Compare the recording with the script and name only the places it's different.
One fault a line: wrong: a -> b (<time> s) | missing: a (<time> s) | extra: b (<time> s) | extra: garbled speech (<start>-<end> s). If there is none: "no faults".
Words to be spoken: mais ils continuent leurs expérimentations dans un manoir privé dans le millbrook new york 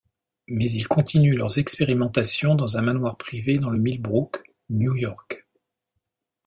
no faults